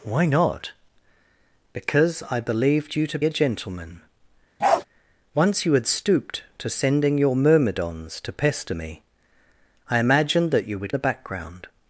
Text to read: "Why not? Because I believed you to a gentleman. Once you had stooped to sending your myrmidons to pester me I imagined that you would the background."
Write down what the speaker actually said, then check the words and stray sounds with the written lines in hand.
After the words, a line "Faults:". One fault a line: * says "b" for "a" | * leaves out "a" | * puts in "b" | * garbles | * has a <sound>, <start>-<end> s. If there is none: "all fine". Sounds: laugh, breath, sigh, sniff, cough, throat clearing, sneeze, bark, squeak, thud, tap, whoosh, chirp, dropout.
"Why not? Because I believed you to a gentleman. Once you had stooped to sending your myrmidons to pester me I imagined that you would the background."
Faults:
* has a bark, 4.6-4.8 s